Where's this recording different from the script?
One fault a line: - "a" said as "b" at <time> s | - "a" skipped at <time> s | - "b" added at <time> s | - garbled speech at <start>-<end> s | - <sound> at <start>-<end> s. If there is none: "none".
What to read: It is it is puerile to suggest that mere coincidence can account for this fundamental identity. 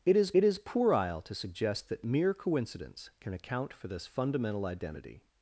none